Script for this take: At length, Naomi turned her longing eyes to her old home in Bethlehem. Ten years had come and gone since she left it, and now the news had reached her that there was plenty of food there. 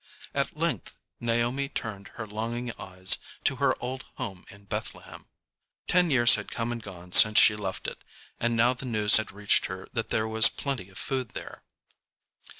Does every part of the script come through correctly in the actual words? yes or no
yes